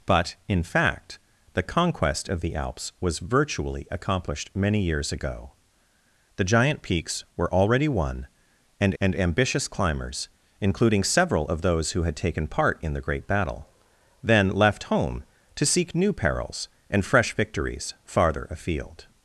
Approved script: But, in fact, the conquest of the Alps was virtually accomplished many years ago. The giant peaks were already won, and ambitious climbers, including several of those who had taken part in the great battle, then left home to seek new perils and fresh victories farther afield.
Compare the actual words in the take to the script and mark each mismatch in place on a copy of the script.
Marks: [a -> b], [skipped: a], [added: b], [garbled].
But, in fact, the conquest of the Alps was virtually accomplished many years ago. The giant peaks were already won, and [added: and] ambitious climbers, including several of those who had taken part in the great battle, then left home to seek new perils and fresh victories farther afield.